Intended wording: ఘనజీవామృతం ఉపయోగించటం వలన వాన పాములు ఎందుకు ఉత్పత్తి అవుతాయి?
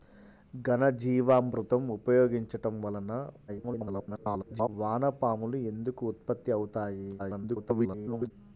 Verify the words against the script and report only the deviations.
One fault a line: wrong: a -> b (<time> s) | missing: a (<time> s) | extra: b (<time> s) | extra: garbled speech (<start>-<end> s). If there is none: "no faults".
extra: garbled speech (3.5-4.7 s)
extra: garbled speech (7.2-8.3 s)